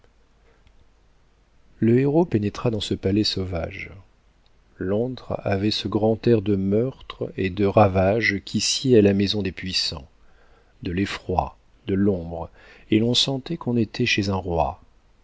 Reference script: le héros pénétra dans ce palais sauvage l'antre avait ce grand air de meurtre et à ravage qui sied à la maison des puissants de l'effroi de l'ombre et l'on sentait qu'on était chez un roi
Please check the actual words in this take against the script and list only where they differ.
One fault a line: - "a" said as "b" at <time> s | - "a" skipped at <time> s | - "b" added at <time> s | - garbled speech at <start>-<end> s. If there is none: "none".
- "à" said as "de" at 7.5 s